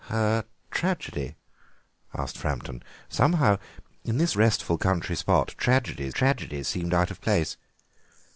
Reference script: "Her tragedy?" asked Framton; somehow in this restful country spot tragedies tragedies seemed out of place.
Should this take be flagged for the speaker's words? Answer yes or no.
no